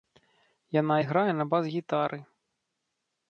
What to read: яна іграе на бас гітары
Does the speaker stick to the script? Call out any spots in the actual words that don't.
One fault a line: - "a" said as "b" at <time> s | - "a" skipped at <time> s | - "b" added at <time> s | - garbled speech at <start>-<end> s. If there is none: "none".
none